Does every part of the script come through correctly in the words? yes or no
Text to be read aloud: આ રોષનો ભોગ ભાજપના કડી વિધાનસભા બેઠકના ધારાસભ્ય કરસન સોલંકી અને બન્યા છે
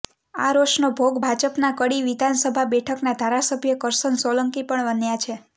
no